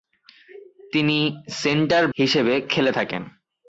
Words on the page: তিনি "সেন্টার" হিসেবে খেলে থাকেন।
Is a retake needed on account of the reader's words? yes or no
no